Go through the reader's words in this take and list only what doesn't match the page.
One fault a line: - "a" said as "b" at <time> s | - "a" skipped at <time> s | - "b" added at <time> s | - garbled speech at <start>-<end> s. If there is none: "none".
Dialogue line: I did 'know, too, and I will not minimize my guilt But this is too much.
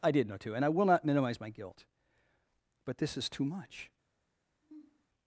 none